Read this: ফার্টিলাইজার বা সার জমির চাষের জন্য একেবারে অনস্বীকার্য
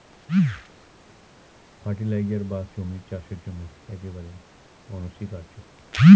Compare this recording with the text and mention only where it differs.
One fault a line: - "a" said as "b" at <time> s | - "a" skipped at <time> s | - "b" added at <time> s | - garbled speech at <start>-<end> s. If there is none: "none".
- "সার" skipped at 2.6 s